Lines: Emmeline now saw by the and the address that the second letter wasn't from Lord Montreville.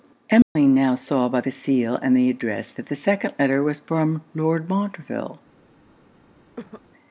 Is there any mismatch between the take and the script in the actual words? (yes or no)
yes